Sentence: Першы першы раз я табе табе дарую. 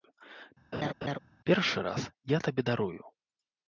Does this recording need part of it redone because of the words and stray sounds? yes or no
yes